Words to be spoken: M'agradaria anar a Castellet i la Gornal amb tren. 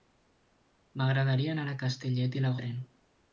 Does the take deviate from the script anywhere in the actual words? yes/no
yes